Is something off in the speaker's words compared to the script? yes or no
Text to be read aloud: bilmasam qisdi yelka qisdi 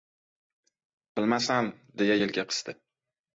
yes